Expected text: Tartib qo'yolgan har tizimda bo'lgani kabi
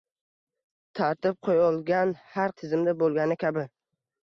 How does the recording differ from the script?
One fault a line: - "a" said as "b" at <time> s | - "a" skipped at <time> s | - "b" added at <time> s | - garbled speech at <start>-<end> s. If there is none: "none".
none